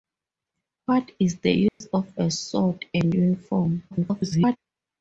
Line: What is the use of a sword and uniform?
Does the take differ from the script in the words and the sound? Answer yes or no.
yes